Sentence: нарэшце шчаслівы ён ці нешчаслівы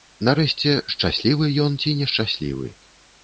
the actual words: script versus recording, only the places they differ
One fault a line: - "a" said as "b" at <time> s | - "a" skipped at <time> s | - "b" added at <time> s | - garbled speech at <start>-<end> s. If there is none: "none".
none